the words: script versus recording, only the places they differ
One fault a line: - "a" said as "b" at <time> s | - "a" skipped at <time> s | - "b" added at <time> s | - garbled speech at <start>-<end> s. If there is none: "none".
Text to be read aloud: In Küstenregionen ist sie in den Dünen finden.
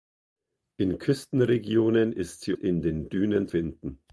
none